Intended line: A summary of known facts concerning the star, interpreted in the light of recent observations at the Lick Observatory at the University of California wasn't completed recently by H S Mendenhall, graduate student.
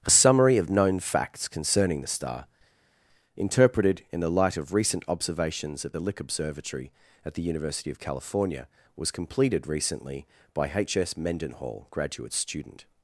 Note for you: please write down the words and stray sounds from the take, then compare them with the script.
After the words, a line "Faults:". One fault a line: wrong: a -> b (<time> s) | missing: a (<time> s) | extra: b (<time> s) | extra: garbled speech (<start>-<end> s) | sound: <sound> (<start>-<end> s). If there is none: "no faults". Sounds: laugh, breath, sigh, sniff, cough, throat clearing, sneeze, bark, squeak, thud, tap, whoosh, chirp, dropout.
A summary of known facts concerning the star, interpreted in the light of recent observations at the Lick Observatory at the University of California was completed recently by H S Mendenhall, graduate student.
Faults:
wrong: wasn't -> was (9.0 s)